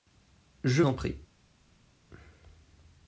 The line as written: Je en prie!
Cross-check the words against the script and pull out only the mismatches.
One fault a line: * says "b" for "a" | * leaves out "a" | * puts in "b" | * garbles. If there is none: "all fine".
all fine